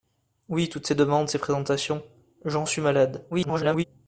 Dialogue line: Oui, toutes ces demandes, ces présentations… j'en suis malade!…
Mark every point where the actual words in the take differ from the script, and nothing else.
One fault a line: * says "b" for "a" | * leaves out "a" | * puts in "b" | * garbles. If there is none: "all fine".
* garbles